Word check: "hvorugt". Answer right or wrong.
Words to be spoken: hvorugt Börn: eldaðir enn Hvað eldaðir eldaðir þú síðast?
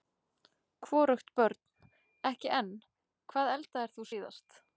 right